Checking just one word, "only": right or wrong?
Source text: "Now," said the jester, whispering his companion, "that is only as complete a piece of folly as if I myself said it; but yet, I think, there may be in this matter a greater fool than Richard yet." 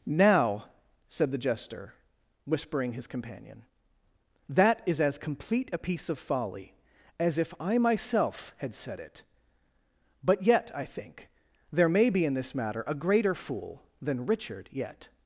wrong